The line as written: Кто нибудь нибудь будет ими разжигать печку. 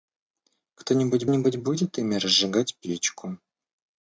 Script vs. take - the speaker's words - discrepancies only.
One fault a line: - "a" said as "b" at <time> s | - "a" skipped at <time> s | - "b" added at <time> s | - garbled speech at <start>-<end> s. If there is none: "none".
none